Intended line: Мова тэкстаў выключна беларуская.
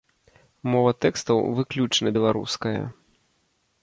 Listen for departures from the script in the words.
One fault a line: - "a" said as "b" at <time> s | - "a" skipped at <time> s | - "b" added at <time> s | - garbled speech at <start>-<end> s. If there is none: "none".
none